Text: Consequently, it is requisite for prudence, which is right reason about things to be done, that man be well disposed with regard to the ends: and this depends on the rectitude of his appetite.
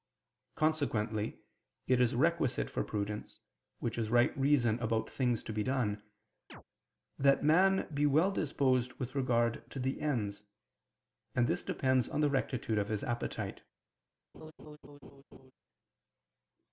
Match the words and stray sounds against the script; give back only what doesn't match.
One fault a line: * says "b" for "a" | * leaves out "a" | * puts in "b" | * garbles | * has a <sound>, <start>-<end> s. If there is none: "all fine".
* has a chirp, 6.5-6.6 s
* has a laugh, 14.3-15.5 s